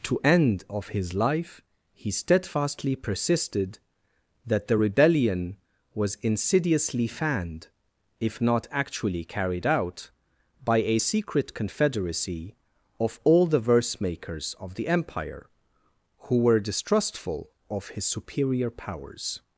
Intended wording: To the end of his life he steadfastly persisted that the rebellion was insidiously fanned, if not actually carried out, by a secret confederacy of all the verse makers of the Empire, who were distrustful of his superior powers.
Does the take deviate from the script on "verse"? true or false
false